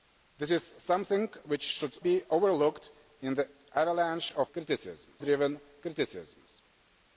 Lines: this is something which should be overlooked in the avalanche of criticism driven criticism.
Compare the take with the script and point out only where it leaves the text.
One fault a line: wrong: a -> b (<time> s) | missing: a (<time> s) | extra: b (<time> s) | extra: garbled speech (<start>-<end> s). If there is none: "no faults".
no faults